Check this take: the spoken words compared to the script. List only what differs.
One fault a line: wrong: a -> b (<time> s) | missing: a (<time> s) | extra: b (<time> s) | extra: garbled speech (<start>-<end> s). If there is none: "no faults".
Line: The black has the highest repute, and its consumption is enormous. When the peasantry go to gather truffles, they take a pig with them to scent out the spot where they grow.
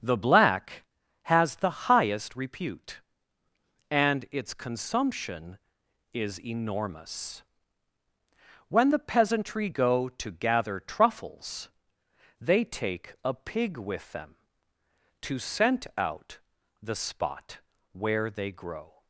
no faults